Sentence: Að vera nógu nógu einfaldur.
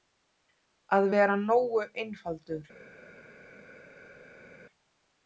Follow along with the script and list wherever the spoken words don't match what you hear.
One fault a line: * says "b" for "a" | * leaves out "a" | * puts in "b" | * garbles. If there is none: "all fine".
* leaves out "nógu"